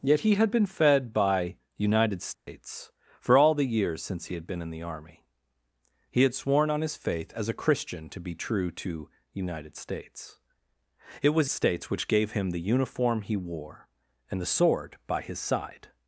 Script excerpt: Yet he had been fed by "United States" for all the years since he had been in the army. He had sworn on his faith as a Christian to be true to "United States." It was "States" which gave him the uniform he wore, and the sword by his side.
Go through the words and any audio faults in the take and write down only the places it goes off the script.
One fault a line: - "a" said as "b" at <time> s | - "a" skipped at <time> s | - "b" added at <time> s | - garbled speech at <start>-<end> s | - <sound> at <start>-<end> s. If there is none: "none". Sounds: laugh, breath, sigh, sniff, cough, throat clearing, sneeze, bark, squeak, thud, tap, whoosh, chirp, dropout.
- dropout at 2.3-2.5 s